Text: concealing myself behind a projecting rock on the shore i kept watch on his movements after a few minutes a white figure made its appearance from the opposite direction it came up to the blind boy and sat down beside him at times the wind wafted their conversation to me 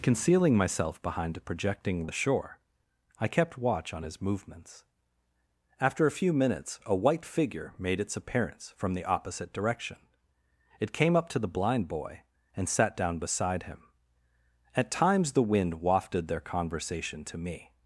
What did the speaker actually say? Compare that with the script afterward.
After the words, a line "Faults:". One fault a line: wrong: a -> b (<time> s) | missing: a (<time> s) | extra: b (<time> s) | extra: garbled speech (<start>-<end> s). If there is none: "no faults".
concealing myself behind a projecting the shore i kept watch on his movements after a few minutes a white figure made its appearance from the opposite direction it came up to the blind boy and sat down beside him at times the wind wafted their conversation to me
Faults:
missing: rock on (2.1 s)